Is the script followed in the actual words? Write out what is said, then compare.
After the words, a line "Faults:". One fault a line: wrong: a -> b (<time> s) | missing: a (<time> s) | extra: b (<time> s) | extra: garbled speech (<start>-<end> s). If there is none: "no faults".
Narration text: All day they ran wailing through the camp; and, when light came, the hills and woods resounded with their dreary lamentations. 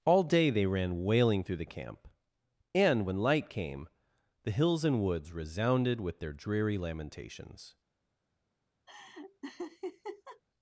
All day they ran wailing through the camp; and, when light came, the hills and woods resounded with their dreary lamentations.
Faults:
no faults